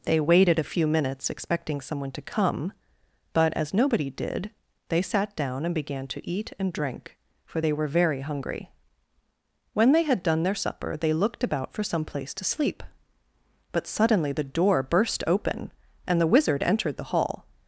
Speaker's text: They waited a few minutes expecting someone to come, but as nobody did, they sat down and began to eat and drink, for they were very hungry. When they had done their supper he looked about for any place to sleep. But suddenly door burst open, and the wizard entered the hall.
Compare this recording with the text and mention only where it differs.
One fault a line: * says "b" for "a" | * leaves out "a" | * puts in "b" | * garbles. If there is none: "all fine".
* says "they" for "he"
* says "some" for "any"
* puts in "the"